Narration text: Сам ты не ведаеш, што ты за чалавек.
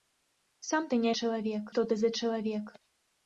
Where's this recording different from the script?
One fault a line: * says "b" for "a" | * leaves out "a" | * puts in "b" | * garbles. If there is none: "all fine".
* says "чалавек" for "ведаеш"